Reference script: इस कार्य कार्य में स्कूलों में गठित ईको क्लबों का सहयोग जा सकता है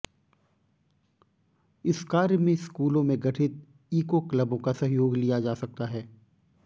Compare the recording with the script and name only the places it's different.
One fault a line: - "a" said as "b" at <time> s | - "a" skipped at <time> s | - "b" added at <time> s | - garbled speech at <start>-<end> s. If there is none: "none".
- "कार्य" skipped at 2.4 s
- "लिया" added at 5.2 s